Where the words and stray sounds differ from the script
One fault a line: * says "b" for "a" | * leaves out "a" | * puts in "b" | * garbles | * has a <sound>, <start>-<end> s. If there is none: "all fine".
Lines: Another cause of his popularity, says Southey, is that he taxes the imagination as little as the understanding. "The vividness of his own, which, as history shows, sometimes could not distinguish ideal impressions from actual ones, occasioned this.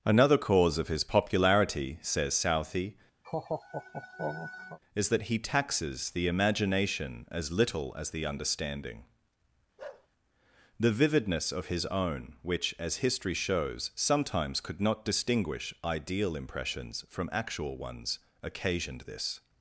* has a laugh, 3.2-4.8 s
* has a bark, 9.8-10.1 s